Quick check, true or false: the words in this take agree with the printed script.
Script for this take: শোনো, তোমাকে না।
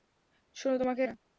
true